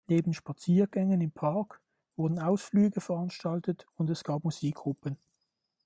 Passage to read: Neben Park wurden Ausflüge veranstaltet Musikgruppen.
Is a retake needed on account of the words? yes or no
yes